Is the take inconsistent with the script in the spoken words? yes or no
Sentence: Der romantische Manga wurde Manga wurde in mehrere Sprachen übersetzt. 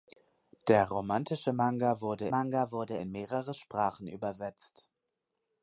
no